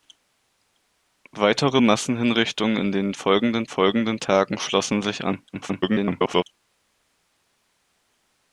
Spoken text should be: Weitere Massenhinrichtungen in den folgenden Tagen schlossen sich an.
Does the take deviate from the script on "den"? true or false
false